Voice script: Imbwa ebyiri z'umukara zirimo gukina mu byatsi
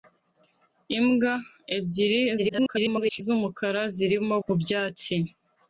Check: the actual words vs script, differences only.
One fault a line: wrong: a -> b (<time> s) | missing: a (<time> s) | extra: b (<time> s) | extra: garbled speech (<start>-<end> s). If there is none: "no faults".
extra: garbled speech (2.4-3.2 s)
missing: gukina (4.3 s)